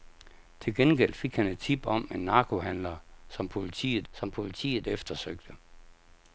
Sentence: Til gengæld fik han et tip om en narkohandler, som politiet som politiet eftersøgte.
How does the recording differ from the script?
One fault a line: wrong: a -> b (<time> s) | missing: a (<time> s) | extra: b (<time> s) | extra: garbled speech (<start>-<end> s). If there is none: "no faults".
no faults